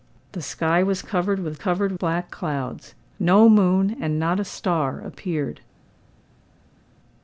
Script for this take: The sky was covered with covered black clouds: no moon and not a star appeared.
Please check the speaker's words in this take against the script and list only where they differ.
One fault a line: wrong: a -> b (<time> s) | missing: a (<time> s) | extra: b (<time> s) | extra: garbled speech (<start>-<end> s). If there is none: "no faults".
no faults